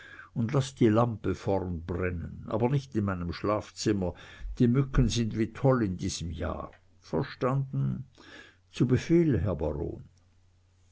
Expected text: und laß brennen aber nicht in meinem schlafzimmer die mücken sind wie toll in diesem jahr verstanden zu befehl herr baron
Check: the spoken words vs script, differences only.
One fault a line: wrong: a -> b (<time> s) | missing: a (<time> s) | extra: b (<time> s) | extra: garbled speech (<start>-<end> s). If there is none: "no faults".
extra: die lampe vorn (0.7 s)